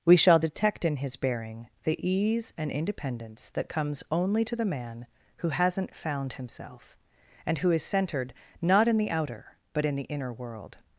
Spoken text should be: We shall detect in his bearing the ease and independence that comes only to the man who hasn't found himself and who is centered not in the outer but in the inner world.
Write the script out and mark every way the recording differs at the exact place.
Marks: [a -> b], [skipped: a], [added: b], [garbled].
We shall detect in his bearing the ease and independence that comes only to the man who hasn't found himself and who is centered not in the outer but in the inner world.